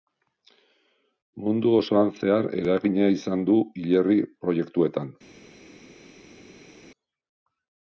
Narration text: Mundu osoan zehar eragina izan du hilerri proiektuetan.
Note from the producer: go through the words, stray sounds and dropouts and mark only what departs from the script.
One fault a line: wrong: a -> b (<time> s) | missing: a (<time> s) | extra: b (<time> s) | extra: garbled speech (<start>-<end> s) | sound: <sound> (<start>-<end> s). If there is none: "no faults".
no faults